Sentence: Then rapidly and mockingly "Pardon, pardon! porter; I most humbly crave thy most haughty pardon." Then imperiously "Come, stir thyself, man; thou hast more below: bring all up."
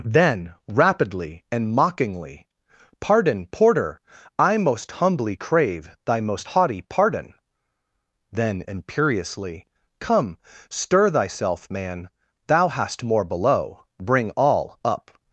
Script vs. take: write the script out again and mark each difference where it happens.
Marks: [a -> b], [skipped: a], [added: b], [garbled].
Then rapidly and mockingly "Pardon, [skipped: pardon!] porter; I most humbly crave thy most haughty pardon." Then imperiously "Come, stir thyself, man; thou hast more below: bring all up."